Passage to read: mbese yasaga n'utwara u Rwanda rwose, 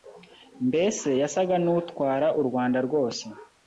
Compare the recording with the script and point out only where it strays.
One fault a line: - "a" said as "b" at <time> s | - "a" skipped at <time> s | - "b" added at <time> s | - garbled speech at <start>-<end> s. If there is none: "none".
none